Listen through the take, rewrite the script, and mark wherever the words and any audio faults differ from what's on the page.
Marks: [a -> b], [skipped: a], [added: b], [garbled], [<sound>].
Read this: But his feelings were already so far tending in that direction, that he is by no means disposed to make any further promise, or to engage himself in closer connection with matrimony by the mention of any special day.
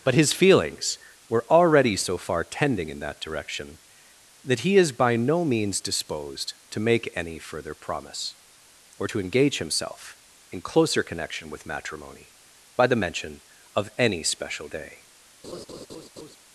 But his feelings were already so far tending in that direction, that he is by no means disposed to make any further promise, or to engage himself in closer connection with matrimony by the mention of any special day. [laugh]